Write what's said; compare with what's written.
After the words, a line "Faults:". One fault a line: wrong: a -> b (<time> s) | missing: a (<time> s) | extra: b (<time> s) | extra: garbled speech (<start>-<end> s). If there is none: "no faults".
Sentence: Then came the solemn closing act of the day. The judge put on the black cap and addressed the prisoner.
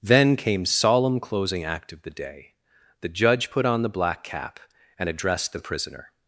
Then came solemn closing act of the day. The judge put on the black cap and addressed the prisoner.
Faults:
missing: the (0.7 s)